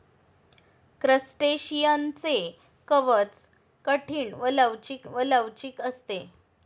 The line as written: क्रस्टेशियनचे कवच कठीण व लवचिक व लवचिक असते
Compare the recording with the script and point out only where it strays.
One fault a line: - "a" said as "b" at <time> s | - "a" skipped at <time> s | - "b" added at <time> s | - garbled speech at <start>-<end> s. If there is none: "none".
none